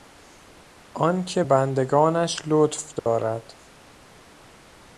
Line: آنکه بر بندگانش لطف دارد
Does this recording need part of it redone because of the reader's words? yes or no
yes